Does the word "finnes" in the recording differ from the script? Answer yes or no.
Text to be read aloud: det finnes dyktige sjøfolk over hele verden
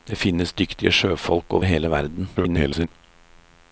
no